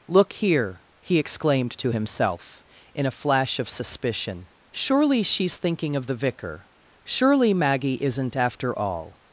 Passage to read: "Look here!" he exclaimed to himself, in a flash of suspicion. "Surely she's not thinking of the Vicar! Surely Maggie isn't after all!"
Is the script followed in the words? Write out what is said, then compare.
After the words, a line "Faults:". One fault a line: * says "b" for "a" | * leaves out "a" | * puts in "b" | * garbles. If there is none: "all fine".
"Look here!" he exclaimed to himself, in a flash of suspicion. "Surely she's thinking of the Vicar! Surely Maggie isn't after all!"
Faults:
* leaves out "not"